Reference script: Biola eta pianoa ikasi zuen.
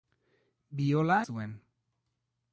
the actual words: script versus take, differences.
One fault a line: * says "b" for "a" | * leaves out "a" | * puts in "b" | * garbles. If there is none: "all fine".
* leaves out "eta pianoa ikasi"